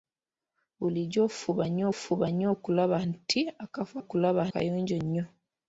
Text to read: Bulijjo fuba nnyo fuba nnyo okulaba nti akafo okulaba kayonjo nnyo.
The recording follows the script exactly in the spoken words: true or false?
true